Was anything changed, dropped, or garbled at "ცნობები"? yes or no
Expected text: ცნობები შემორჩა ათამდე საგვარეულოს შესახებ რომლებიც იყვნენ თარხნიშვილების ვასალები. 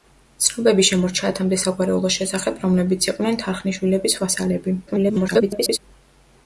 no